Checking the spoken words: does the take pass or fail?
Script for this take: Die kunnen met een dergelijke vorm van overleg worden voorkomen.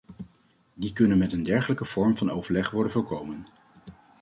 pass